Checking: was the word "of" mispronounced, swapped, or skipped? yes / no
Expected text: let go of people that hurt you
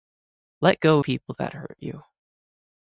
yes